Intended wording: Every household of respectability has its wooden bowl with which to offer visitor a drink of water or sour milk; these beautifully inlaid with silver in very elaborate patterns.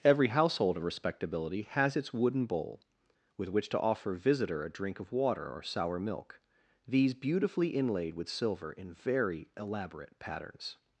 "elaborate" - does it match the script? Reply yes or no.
yes